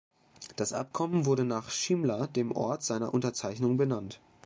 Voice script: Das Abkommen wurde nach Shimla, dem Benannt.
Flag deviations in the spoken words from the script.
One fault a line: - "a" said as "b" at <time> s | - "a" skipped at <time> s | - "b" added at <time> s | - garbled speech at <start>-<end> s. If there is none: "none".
- "Ort seiner Unterzeichnung" added at 2.5 s